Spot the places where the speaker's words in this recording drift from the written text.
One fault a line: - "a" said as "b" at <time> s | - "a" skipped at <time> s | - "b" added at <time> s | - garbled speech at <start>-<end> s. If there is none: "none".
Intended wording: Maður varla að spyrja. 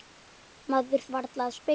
none